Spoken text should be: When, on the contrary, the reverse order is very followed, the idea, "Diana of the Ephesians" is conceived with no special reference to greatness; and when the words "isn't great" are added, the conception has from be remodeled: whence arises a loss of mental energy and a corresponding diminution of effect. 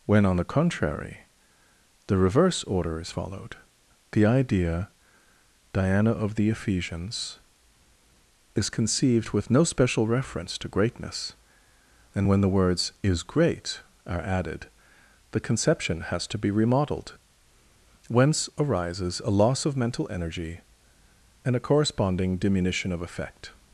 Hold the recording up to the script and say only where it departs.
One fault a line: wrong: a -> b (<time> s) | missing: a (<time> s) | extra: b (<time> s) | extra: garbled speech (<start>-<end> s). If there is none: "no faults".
missing: very (3.1 s)
wrong: isn't -> is (13.0 s)
wrong: from -> to (16.3 s)